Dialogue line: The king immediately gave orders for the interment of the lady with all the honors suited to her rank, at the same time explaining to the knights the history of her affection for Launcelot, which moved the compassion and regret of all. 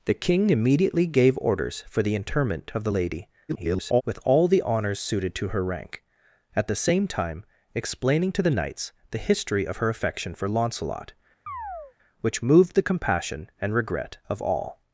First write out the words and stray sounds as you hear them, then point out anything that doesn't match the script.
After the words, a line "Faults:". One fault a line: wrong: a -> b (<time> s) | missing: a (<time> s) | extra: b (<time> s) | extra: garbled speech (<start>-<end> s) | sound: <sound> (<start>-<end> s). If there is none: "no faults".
The king immediately gave orders for the interment of the lady [garbled] with all the honors suited to her rank, at the same time explaining to the knights the history of her affection for Launcelot, which moved the compassion and regret of all.
Faults:
extra: garbled speech (3.5-4.0 s)
sound: chirp (11.5-11.9 s)